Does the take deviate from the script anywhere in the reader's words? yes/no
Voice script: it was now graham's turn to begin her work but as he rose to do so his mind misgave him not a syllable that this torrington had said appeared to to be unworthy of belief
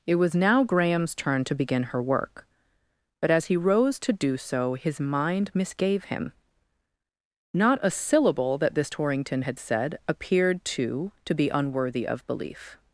no